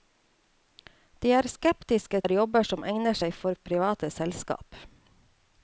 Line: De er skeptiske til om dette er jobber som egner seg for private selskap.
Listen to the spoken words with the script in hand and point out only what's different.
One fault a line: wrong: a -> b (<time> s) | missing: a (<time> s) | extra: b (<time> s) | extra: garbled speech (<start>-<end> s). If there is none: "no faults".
missing: til om dette (2.2 s)